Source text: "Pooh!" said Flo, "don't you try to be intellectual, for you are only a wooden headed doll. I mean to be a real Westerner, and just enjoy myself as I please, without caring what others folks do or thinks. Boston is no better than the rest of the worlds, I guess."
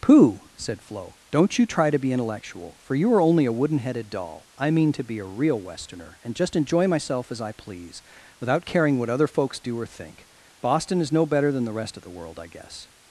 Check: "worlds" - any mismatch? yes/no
yes